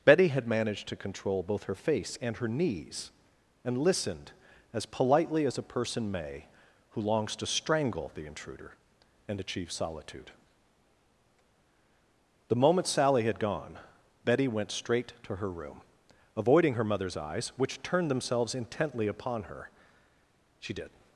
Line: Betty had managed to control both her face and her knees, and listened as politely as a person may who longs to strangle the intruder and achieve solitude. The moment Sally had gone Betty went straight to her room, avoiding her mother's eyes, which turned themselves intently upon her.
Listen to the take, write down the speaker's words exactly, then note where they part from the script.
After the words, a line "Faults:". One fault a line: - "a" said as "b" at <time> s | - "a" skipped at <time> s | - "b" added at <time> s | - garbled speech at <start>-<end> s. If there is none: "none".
Betty had managed to control both her face and her knees, and listened as politely as a person may who longs to strangle the intruder and achieve solitude. The moment Sally had gone Betty went straight to her room, avoiding her mother's eyes, which turned themselves intently upon her. She did
Faults:
- "She did" added at 20.6 s